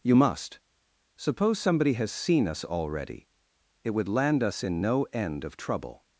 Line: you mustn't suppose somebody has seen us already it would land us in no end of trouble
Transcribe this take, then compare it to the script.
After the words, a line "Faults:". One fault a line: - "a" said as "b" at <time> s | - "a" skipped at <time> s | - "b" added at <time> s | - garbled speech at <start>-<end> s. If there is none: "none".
you must suppose somebody has seen us already it would land us in no end of trouble
Faults:
- "mustn't" said as "must" at 0.1 s